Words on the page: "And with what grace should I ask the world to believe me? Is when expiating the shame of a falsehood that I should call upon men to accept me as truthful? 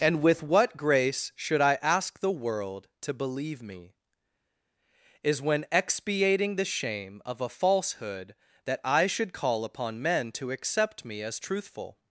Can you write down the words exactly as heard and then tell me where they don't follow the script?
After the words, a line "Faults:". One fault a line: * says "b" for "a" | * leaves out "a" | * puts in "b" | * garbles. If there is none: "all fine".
"And with what grace should I ask the world to believe me? Is when expiating the shame of a falsehood that I should call upon men to accept me as truthful?
Faults:
all fine